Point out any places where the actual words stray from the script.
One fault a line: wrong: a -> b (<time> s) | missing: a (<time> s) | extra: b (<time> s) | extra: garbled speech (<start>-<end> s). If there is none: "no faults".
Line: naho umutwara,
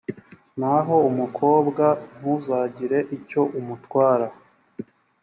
extra: umukobwa ntuzagire icyo (1.1 s)